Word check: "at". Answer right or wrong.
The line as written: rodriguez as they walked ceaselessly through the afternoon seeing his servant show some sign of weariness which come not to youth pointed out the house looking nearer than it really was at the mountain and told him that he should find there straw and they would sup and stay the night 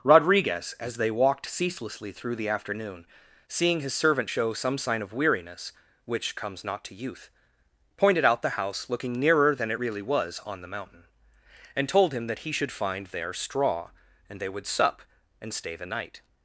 wrong